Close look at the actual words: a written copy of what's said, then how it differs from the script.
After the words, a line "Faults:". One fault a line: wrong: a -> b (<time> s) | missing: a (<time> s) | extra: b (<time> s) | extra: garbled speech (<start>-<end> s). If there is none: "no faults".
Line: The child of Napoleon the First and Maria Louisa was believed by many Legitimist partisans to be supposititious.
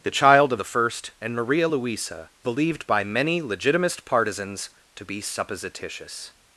The child of The First and Maria Louisa believed by many Legitimist partisans to be supposititious.
Faults:
missing: Napoleon (0.6 s)
missing: was (2.3 s)